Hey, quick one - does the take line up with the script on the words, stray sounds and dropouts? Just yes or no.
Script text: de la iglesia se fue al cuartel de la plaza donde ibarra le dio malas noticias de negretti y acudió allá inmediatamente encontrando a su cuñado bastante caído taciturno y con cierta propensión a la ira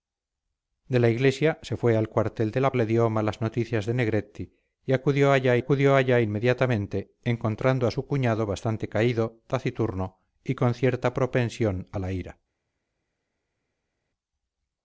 no